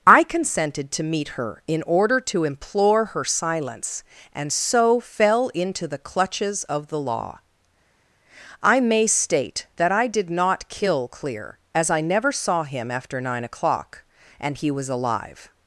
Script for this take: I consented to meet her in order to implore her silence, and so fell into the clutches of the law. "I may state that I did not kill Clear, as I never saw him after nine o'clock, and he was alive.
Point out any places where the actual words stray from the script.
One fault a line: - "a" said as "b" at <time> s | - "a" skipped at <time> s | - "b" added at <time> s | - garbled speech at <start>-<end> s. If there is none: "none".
none